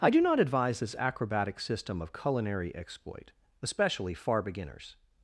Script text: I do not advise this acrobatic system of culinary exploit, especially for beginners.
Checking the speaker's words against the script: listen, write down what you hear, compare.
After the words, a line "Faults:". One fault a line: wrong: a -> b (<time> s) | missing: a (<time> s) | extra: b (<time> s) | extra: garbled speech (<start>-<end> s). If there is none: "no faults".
I do not advise this acrobatic system of culinary exploit, especially far beginners.
Faults:
wrong: for -> far (4.1 s)